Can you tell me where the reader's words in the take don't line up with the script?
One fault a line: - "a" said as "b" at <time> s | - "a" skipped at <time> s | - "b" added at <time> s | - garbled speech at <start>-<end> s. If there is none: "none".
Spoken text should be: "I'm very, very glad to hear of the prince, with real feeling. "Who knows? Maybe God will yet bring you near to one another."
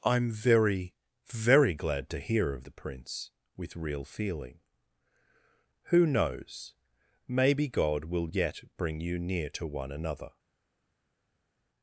none